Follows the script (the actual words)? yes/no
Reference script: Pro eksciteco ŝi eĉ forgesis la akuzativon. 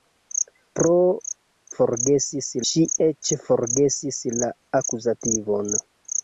no